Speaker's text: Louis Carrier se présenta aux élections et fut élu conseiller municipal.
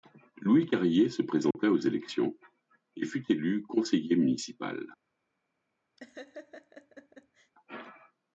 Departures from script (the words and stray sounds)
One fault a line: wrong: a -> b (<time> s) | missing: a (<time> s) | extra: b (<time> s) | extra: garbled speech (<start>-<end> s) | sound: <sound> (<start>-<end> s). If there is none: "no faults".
sound: dropout (1.5-1.5 s)
sound: laugh (6.0-7.5 s)